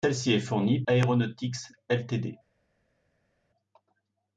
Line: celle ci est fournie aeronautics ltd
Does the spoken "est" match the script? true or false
true